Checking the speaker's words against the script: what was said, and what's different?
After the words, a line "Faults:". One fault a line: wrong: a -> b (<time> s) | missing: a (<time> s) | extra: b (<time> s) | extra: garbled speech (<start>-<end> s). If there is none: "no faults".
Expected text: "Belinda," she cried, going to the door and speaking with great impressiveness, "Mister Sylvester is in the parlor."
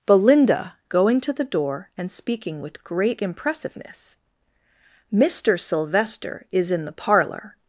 "Belinda," going to the door and speaking with great impressiveness, "Mister Sylvester is in the parlor."
Faults:
missing: she cried (0.8 s)